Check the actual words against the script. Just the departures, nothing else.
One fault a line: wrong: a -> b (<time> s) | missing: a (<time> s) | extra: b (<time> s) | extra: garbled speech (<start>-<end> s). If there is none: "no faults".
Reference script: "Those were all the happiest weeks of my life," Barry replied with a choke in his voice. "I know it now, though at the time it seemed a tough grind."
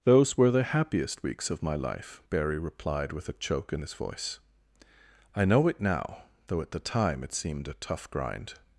missing: all (0.5 s)